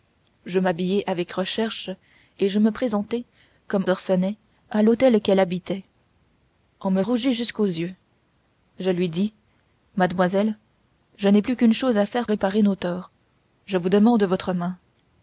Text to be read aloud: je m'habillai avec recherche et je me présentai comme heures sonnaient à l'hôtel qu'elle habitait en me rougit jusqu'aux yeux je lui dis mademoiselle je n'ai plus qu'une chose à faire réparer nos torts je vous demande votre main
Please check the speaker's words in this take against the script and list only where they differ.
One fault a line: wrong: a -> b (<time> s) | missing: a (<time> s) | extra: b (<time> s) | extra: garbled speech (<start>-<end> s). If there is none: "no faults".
no faults